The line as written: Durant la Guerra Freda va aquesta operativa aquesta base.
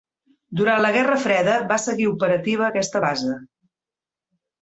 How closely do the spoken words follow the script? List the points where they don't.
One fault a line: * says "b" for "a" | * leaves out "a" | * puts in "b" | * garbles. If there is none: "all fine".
* says "seguir" for "aquesta"